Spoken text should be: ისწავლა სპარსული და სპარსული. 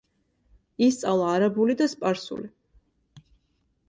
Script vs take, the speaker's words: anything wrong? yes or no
yes